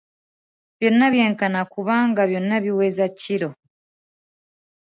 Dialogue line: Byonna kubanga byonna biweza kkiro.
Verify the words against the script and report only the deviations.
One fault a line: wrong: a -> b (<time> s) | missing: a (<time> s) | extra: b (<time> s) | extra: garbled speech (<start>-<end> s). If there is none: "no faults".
extra: byenkana (1.1 s)